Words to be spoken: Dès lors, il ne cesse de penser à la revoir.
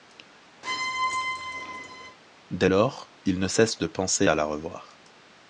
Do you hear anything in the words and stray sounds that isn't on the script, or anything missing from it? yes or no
yes